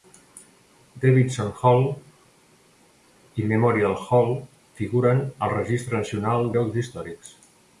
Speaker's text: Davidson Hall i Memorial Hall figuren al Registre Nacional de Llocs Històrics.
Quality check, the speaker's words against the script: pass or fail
fail